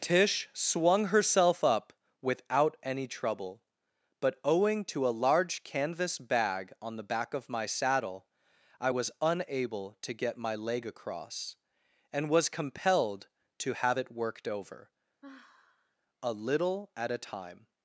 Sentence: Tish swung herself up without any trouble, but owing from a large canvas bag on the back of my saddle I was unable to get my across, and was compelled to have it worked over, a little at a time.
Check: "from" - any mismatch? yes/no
yes